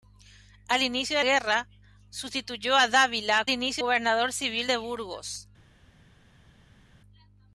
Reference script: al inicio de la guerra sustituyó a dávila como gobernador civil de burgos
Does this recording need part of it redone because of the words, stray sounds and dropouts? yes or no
yes